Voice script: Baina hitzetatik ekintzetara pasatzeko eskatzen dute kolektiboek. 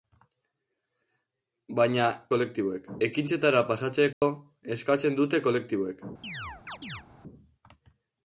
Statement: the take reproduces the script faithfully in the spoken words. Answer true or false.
false